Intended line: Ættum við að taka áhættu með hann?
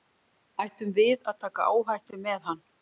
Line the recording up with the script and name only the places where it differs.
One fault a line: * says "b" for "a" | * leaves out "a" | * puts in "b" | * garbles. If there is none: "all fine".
all fine